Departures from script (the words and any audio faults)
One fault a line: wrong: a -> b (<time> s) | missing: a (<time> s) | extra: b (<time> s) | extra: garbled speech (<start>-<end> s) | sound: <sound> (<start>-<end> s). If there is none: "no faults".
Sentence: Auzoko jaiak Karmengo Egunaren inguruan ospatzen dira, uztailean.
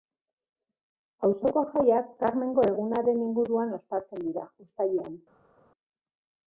no faults